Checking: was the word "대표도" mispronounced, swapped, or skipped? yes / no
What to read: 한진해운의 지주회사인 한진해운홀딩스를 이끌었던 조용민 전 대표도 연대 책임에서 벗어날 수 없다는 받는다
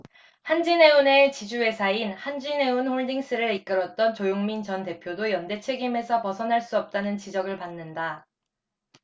no